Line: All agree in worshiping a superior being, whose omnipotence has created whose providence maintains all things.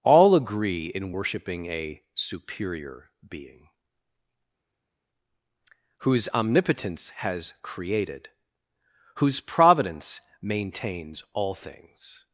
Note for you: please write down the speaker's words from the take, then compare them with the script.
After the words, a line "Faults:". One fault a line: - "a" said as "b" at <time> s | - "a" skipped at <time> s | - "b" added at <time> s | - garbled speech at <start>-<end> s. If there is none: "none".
All agree in worshiping a superior being, whose omnipotence has created whose providence maintains all things.
Faults:
none